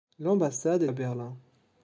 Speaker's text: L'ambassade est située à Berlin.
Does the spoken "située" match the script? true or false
false